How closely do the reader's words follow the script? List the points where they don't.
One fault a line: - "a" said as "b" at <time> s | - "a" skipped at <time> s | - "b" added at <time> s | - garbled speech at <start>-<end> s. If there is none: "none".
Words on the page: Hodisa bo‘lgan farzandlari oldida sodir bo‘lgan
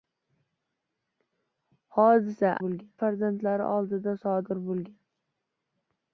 none